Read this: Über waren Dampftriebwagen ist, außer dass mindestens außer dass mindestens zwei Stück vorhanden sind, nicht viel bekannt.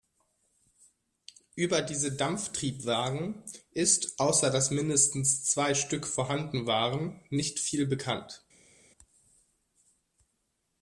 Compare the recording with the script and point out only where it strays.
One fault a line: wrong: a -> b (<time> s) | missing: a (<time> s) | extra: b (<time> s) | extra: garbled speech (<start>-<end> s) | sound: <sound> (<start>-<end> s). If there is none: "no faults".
wrong: waren -> diese (1.8 s)
missing: außer dass mindestens (5.4 s)
wrong: sind -> waren (6.7 s)